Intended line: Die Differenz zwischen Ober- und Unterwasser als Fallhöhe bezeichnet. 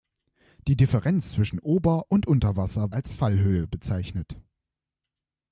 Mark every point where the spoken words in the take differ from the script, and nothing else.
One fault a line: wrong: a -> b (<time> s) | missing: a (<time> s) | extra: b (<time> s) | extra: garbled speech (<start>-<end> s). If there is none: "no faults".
no faults